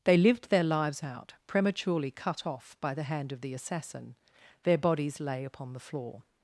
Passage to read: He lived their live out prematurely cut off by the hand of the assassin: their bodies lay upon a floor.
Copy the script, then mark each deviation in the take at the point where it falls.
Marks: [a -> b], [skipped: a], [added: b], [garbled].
[He -> They] lived their [live -> lives] out prematurely cut off by the hand of the assassin: their bodies lay upon [a -> the] floor.